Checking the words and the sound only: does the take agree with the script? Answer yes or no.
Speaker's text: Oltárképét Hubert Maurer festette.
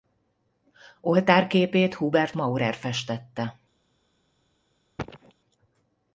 no